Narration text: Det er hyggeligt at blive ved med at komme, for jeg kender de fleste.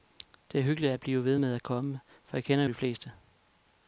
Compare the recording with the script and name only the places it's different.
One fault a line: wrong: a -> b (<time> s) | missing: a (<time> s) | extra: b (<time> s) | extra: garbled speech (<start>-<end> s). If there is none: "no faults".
no faults